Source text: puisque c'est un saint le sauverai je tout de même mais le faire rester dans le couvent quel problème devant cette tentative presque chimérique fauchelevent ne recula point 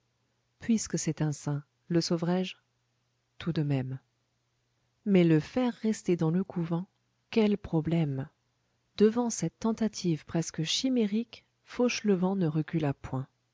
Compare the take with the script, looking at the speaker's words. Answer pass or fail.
pass